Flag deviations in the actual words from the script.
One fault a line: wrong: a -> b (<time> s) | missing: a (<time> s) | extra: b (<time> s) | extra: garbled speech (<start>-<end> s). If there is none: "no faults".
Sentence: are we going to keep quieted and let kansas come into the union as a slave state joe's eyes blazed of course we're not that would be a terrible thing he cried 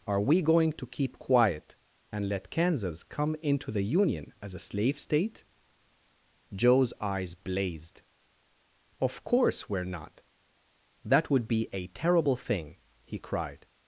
wrong: quieted -> quiet (1.2 s)